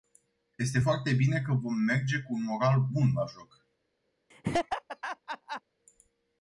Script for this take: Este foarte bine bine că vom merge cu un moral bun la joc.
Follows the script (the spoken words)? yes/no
no